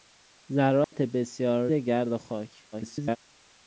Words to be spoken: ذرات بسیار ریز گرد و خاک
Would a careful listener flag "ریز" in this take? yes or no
yes